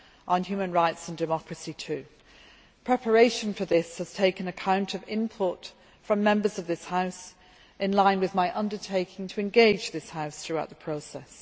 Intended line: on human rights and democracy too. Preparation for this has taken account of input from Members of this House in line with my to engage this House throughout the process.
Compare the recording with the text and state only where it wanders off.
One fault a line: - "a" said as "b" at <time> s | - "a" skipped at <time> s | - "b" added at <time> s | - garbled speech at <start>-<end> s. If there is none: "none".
- "undertaking" added at 8.6 s